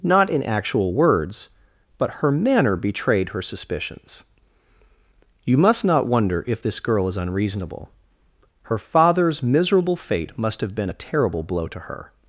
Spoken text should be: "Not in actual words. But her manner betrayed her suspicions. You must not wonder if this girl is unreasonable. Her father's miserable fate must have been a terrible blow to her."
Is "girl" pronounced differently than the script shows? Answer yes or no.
no